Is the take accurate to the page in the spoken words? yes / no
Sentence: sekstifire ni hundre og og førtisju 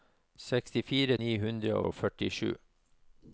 yes